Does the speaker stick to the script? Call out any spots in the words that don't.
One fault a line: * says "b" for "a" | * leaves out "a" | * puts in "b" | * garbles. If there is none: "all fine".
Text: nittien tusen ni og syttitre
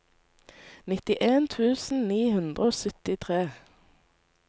* puts in "hundre"